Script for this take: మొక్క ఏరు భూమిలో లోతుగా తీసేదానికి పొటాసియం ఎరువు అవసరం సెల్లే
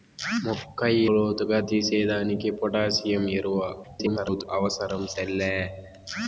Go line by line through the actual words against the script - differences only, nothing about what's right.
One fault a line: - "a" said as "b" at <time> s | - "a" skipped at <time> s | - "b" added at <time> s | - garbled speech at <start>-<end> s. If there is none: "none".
- "ఏరు భూమిలో" skipped at 0.8 s
- garbled speech at 3.8-4.4 s